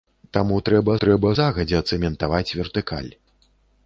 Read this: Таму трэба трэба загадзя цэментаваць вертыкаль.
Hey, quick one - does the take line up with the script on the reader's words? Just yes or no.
yes